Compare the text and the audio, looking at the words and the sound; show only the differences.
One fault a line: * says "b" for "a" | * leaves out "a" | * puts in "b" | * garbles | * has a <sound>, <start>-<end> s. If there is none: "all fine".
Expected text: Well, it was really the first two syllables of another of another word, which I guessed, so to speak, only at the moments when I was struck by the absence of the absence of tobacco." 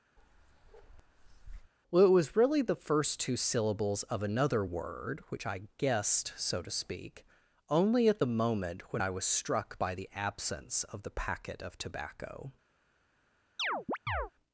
* has a bark, 0.2-1.7 s
* leaves out "of another"
* says "moment" for "moments"
* says "packet" for "absence"
* has a chirp, 13.6-14.3 s